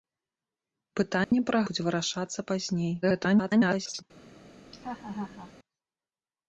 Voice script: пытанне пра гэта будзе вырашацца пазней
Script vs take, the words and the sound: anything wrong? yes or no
yes